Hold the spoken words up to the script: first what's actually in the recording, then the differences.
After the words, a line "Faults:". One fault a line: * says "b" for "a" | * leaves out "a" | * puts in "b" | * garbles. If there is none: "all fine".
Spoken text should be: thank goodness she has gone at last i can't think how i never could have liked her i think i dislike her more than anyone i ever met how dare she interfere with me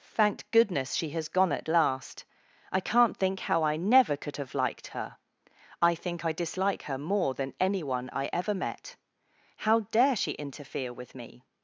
thank goodness she has gone at last i can't think how i never could have liked her i think i dislike her more than anyone i ever met how dare she interfere with me
Faults:
all fine